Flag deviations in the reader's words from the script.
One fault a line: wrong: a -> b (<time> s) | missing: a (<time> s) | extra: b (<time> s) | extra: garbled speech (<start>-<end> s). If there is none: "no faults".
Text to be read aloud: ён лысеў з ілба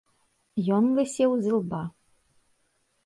no faults